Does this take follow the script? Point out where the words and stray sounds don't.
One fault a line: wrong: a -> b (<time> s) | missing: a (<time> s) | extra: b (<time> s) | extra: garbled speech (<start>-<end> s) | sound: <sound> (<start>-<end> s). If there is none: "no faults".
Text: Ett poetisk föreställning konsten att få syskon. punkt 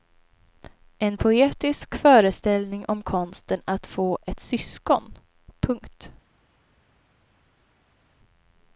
wrong: Ett -> En (1.0 s)
extra: om (2.9 s)
extra: ett (4.2 s)